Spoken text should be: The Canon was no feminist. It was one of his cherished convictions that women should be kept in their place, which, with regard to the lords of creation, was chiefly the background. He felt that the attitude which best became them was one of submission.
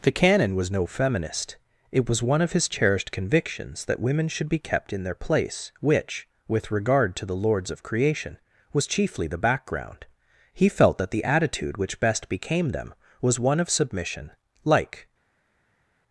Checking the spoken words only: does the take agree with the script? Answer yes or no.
no